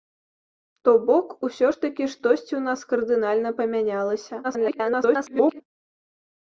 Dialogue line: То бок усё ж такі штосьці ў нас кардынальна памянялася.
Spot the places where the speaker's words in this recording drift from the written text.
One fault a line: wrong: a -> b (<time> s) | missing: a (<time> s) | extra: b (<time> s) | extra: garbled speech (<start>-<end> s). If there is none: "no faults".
extra: garbled speech (4.4-5.6 s)